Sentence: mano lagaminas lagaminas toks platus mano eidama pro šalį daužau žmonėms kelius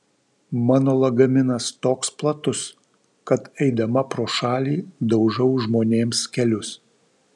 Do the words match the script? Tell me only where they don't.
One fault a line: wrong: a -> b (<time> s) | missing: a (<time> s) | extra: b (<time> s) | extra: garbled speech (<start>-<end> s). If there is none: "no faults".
missing: lagaminas (1.6 s)
wrong: mano -> kad (3.3 s)